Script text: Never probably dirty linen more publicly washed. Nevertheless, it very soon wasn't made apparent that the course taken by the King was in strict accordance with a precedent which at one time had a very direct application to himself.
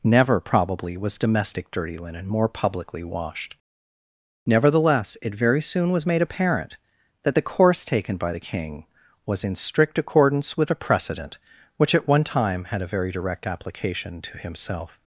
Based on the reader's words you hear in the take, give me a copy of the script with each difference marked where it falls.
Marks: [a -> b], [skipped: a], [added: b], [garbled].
Never probably [added: was domestic] dirty linen more publicly washed. Nevertheless, it very soon [wasn't -> was] made apparent that the course taken by the King was in strict accordance with a precedent which at one time had a very direct application to himself.